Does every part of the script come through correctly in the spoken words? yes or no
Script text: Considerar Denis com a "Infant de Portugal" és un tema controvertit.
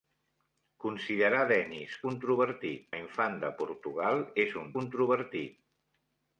no